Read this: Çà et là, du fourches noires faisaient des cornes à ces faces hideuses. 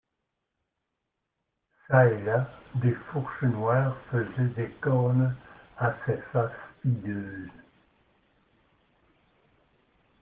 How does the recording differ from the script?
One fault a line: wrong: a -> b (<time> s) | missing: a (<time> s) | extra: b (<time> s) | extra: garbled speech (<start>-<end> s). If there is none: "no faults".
wrong: du -> des (2.8 s)